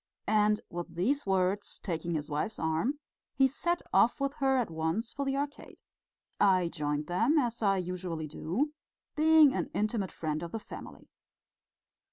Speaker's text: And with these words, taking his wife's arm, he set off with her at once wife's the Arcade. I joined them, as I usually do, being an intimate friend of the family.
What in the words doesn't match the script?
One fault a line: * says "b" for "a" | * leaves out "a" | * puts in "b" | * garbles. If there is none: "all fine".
* says "for" for "wife's"